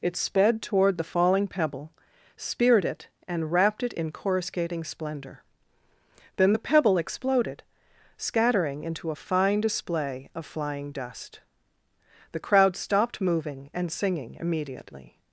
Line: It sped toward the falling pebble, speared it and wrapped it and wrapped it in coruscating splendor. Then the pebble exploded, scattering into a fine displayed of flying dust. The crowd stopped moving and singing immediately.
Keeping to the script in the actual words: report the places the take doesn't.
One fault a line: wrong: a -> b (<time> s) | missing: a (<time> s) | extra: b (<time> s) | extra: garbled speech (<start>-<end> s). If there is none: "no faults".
missing: and wrapped it (3.9 s)
wrong: displayed -> display (9.6 s)